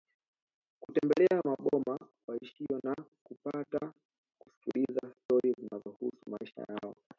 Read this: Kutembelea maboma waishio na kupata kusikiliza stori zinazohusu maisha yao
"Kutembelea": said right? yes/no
yes